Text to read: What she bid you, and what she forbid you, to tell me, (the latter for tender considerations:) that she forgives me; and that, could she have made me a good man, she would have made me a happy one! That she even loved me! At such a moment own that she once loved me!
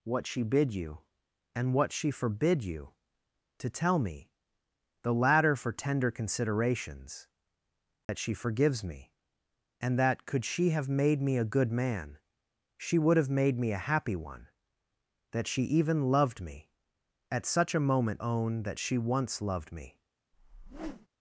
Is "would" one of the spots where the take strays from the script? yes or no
no